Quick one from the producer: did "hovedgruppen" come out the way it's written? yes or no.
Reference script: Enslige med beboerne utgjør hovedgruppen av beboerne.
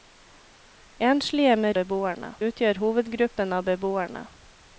yes